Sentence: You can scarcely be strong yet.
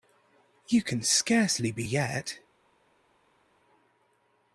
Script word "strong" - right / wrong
wrong